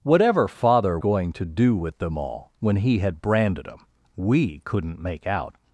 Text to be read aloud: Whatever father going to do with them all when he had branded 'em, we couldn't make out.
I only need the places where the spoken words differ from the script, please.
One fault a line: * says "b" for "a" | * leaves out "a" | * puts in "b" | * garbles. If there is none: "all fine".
all fine